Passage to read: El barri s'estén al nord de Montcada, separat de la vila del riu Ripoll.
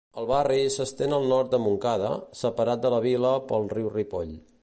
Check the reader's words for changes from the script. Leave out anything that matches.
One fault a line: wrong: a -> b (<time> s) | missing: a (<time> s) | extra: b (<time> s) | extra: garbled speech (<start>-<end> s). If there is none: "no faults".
wrong: del -> pel (3.5 s)